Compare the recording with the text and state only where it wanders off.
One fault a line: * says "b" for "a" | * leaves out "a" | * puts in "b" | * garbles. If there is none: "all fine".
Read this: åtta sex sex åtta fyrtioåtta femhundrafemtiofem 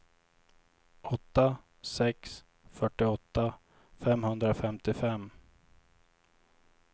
* leaves out "sex åtta"